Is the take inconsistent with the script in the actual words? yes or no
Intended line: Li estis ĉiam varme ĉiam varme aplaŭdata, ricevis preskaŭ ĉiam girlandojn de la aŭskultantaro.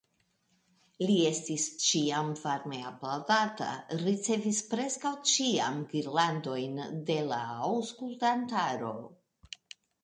yes